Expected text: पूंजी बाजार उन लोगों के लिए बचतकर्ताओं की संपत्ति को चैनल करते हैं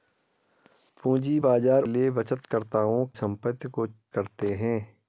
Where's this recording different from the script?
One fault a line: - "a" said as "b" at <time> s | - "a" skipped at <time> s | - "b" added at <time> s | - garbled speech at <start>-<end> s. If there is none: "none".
- "उन लोगों के" skipped at 1.8 s
- "की" skipped at 3.0 s
- "चैनल" skipped at 3.9 s